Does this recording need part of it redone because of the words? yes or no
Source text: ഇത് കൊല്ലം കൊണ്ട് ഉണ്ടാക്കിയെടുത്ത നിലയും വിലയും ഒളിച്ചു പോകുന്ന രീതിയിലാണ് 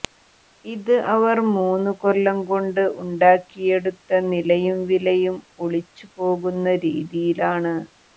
yes